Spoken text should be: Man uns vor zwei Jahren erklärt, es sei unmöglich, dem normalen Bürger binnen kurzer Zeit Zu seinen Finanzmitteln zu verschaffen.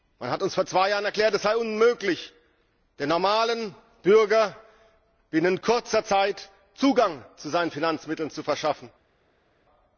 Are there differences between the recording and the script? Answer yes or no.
yes